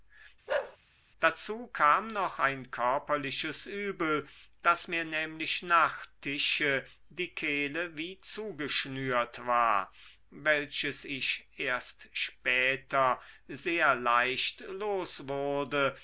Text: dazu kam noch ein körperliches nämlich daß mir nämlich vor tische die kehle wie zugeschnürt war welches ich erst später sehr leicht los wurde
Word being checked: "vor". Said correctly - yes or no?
no